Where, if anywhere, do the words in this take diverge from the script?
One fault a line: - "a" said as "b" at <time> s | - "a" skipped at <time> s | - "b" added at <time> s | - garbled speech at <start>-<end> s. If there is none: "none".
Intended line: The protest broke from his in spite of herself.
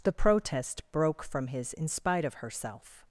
none